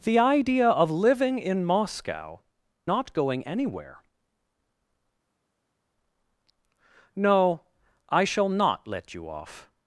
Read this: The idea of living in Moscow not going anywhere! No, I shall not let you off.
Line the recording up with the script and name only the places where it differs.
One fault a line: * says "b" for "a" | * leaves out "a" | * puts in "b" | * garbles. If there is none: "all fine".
all fine